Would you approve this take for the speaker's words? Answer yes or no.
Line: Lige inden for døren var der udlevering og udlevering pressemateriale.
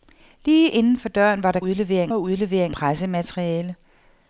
yes